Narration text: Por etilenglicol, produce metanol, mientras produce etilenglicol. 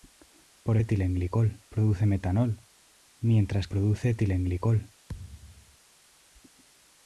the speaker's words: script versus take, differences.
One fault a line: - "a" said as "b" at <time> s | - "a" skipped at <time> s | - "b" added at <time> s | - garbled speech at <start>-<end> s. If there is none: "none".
none